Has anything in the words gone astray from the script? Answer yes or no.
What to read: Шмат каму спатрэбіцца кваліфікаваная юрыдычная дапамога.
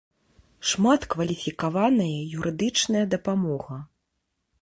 yes